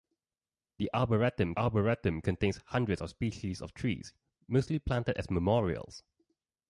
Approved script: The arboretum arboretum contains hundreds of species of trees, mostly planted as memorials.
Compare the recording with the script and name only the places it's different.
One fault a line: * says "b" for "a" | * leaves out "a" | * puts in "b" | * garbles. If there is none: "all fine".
all fine